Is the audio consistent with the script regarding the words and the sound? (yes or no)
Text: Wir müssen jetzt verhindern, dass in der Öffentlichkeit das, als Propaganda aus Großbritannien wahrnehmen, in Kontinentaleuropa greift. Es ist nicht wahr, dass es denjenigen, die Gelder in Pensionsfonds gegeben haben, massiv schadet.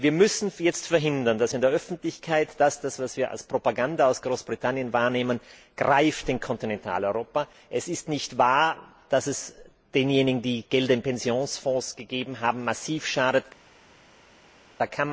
no